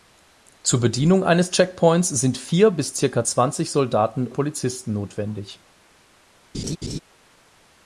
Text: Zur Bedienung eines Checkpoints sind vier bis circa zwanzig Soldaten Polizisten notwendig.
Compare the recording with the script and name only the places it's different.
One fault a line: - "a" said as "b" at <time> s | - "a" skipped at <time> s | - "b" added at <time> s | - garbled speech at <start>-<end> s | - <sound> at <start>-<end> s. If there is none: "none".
- laugh at 6.5-7.0 s